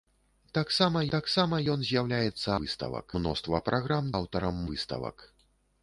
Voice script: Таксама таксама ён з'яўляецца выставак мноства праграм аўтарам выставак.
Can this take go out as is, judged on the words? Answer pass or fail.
pass